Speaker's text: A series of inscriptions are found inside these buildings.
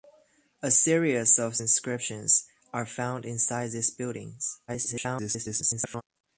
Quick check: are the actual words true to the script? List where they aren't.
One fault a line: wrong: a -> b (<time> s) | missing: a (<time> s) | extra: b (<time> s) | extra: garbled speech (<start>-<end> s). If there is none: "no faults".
extra: garbled speech (4.7-6.0 s)